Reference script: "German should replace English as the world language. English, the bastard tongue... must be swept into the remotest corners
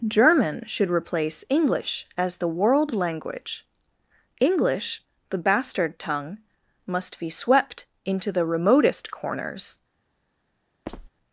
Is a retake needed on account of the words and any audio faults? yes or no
yes